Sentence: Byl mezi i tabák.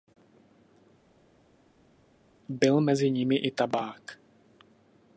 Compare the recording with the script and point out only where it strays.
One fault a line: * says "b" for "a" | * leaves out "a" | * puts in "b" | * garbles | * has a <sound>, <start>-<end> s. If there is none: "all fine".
* puts in "nimi"